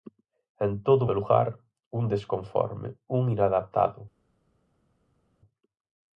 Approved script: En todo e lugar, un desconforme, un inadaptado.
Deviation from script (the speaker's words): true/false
false